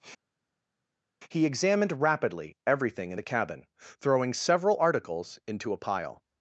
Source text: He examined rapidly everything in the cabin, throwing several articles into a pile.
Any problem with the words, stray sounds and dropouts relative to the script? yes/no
no